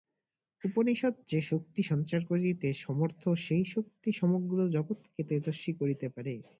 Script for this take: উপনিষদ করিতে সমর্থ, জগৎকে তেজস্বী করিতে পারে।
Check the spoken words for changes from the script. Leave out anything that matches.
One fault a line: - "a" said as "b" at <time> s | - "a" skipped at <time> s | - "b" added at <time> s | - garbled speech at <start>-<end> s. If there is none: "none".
- "যে শক্তি সঞ্চার" added at 1.3 s
- "সেই শক্তি সমগ্র" added at 3.4 s